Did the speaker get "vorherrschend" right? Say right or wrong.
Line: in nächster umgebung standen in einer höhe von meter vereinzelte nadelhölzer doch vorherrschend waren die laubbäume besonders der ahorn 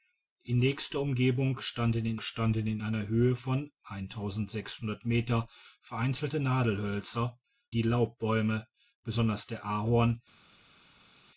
wrong